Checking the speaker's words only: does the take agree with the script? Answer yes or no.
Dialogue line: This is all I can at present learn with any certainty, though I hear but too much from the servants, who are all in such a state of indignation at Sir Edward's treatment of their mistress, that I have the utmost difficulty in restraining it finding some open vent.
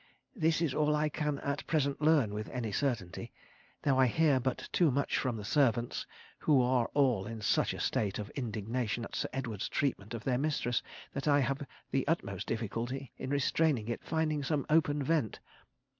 yes